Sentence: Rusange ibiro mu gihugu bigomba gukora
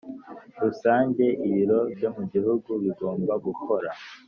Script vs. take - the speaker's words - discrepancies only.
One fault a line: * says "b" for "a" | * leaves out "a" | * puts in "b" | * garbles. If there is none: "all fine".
* puts in "byo"